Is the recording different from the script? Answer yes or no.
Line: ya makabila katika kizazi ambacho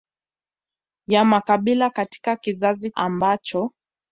no